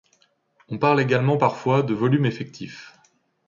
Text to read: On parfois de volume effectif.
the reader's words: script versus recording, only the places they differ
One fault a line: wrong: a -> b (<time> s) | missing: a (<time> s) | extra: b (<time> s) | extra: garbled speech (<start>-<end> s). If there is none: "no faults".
extra: parle également (0.8 s)